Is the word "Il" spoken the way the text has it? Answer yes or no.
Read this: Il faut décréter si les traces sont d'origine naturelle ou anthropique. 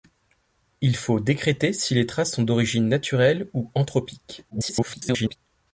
yes